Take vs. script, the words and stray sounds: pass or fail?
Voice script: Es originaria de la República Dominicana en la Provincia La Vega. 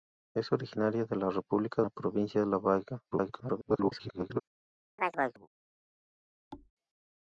fail